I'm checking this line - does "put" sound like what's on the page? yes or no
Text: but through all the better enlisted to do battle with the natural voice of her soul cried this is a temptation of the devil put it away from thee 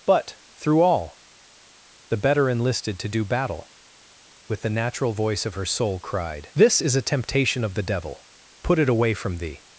yes